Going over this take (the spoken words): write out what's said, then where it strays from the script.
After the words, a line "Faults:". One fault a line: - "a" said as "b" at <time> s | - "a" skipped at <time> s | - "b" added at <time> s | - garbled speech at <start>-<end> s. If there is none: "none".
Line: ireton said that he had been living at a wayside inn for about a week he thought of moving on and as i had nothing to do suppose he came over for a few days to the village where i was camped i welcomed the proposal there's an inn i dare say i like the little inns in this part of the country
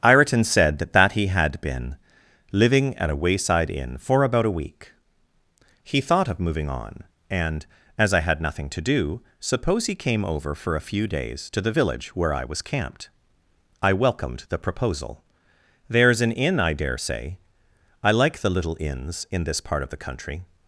ireton said that that he had been living at a wayside inn for about a week he thought of moving on and as i had nothing to do suppose he came over for a few days to the village where i was camped i welcomed the proposal there's an inn i dare say i like the little inns in this part of the country
Faults:
- "that" added at 0.9 s